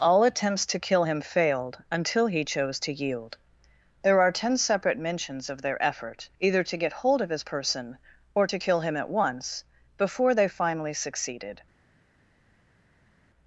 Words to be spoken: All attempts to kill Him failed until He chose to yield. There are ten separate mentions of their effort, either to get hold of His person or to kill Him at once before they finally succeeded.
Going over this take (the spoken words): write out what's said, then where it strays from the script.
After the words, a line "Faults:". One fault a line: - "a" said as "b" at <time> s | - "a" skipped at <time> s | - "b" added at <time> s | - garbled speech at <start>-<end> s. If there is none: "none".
All attempts to kill Him failed until He chose to yield. There are ten separate mentions of their effort, either to get hold of His person or to kill Him at once before they finally succeeded.
Faults:
none